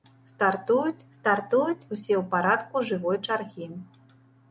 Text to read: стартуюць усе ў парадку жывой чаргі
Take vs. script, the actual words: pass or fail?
fail